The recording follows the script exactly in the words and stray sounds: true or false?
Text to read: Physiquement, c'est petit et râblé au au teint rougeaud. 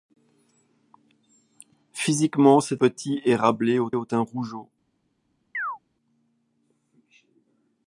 false